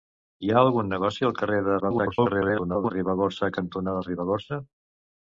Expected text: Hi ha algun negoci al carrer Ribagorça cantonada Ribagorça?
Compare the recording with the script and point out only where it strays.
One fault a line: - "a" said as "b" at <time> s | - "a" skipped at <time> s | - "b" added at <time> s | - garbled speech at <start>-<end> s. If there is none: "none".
- garbled speech at 1.8-2.9 s